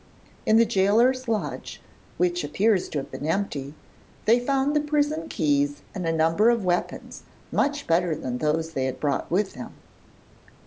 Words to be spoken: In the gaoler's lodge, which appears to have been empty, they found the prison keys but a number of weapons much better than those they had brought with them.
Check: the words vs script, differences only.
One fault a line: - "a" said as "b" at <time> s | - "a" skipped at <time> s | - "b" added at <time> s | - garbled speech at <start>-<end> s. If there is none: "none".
- "but" said as "and" at 5.9 s